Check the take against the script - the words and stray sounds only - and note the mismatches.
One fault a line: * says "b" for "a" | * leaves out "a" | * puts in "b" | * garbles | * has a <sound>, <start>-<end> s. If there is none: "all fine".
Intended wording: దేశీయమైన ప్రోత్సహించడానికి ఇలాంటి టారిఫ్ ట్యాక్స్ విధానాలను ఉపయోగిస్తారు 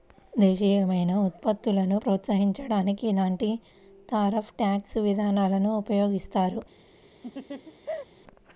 * puts in "ఉత్పత్తులను"
* has a laugh, 7.2-8.1 s